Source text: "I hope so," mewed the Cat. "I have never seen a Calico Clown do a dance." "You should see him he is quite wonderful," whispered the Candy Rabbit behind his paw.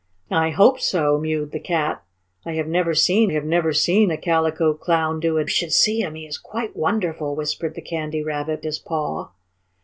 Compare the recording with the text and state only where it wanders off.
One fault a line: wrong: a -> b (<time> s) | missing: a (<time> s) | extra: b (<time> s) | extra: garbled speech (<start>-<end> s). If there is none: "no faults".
extra: have never seen (3.3 s)
missing: dance You (5.4 s)
missing: behind (8.6 s)